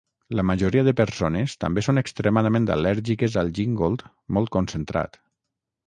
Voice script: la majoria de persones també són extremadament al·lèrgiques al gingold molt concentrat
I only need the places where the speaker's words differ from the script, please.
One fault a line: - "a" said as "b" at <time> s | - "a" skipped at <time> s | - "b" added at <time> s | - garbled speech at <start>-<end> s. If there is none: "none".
none